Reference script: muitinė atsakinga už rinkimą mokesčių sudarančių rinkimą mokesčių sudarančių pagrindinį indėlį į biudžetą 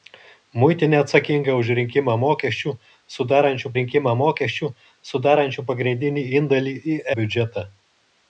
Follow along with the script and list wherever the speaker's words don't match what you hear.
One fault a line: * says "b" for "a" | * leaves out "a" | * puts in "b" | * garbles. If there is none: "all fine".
all fine